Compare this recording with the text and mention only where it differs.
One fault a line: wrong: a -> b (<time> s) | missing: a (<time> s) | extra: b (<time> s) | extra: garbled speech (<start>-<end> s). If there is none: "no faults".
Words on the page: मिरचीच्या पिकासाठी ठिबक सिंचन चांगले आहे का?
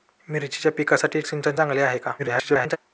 missing: ठिबक (1.2 s)
extra: garbled speech (2.2-2.8 s)